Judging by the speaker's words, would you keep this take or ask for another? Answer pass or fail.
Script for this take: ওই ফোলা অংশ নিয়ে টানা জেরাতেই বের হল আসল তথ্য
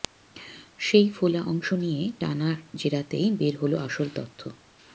fail